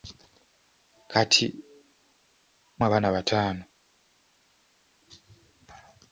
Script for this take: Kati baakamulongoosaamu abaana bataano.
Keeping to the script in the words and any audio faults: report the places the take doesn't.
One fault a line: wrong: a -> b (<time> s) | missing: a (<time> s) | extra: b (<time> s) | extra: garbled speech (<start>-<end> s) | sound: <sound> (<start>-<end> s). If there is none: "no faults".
missing: baakamulongoosaamu (1.4 s)